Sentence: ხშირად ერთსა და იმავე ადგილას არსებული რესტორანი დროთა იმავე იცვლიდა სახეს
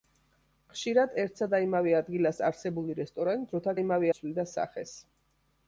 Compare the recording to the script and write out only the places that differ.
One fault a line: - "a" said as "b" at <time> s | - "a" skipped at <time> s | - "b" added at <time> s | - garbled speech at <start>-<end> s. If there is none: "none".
none